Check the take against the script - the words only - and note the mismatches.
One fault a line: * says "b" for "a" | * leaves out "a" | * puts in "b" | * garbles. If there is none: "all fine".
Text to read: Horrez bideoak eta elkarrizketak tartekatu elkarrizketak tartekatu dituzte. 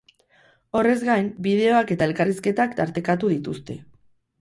* puts in "gain"
* leaves out "elkarrizketak tartekatu"